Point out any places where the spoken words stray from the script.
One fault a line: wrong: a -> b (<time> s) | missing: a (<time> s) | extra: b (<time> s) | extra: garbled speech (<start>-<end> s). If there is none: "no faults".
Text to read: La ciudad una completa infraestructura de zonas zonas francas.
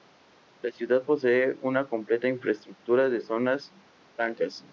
extra: posee (1.0 s)
missing: zonas (3.7 s)